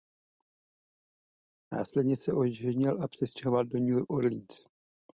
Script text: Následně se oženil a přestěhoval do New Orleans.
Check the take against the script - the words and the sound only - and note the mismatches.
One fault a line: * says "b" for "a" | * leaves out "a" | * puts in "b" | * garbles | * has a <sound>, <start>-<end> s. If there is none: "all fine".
all fine